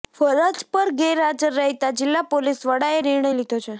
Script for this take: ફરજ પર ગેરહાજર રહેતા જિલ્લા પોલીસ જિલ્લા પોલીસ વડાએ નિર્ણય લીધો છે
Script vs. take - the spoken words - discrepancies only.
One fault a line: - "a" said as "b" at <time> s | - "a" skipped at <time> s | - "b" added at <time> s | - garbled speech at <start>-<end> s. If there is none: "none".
- "જિલ્લા પોલીસ" skipped at 2.6 s